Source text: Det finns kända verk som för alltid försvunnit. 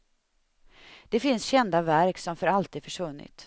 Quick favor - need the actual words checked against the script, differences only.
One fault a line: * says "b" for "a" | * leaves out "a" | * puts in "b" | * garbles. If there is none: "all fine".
all fine